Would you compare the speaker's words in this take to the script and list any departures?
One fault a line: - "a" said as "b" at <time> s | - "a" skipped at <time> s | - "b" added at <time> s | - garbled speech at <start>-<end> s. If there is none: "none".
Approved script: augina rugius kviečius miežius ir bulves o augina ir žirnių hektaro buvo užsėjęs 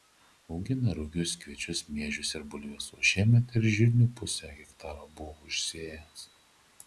- "augina" said as "šiemet" at 3.1 s
- "pusę" added at 4.2 s